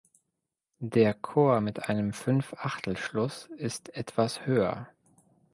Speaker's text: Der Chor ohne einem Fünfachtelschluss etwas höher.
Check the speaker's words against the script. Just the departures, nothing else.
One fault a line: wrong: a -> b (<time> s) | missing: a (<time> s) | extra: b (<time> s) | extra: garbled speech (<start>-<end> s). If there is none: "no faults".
wrong: ohne -> mit (1.6 s)
extra: ist (3.6 s)